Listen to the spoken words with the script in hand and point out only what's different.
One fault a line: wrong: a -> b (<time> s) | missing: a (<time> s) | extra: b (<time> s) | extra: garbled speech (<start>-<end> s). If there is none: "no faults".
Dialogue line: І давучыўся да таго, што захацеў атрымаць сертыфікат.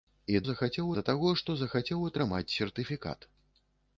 wrong: давучыўся -> захацеў (0.5 s)